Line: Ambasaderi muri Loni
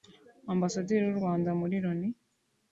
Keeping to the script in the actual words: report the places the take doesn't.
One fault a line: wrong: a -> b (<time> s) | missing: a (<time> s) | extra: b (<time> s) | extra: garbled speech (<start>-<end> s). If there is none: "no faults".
extra: w'u Rwanda (1.1 s)